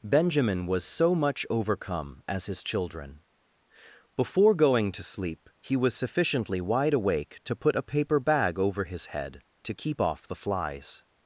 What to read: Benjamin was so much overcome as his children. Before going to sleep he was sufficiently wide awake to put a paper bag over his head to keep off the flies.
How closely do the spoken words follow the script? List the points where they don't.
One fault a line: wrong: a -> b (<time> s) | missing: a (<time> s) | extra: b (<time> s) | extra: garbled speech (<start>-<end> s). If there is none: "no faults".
no faults